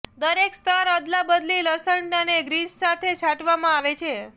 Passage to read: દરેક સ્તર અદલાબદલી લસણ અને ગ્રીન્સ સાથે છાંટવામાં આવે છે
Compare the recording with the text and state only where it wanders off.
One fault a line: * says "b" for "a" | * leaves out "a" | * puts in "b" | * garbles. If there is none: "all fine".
all fine